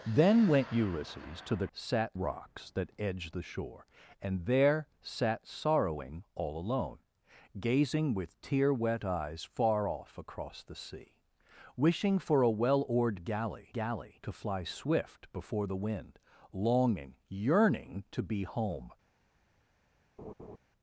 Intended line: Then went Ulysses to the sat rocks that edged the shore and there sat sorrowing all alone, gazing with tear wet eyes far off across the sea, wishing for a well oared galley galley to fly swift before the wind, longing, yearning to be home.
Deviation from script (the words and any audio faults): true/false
true